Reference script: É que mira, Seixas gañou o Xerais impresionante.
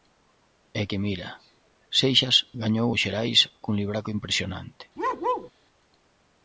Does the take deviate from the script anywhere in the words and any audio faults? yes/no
yes